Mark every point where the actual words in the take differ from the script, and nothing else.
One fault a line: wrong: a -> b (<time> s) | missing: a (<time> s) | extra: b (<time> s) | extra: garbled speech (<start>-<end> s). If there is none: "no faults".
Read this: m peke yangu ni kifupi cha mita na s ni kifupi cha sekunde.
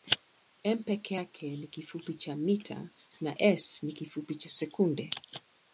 wrong: yangu -> yake (1.1 s)